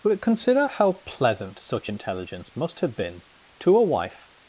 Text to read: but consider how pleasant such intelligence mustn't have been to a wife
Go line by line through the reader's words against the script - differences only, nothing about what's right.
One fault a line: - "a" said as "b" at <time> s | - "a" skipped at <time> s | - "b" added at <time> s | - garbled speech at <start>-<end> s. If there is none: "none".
- "mustn't" said as "must" at 2.6 s